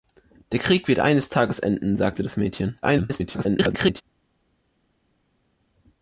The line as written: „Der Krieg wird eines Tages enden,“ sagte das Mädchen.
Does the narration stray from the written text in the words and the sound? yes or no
yes